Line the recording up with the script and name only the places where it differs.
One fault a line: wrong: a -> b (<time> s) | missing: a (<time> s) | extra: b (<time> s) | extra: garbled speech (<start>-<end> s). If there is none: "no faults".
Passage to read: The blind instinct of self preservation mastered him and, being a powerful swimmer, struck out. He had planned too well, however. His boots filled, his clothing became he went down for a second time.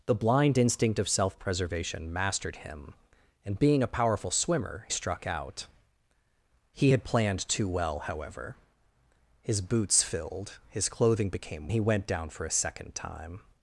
no faults